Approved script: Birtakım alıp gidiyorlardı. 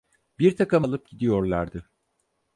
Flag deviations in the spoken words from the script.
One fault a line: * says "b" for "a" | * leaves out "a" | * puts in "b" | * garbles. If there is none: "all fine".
all fine